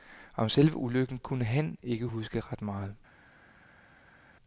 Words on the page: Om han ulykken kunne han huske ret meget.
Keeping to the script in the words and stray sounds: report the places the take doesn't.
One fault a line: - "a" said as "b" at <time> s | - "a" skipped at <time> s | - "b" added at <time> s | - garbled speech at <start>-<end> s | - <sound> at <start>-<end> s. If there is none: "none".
- "han" said as "selve" at 0.5 s
- "ikke" added at 1.8 s